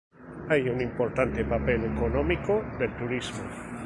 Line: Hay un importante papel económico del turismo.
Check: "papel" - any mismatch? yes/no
no